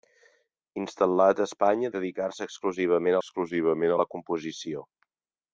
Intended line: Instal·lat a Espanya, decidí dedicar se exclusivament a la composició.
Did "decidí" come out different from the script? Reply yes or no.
yes